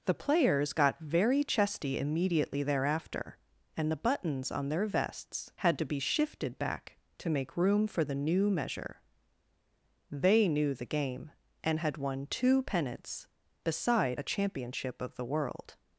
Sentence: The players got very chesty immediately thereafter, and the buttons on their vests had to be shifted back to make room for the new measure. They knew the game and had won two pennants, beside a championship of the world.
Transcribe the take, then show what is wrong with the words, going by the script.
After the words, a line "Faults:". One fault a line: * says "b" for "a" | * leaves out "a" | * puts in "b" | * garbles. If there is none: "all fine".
The players got very chesty immediately thereafter, and the buttons on their vests had to be shifted back to make room for the new measure. They knew the game and had won two pennants, beside a championship of the world.
Faults:
all fine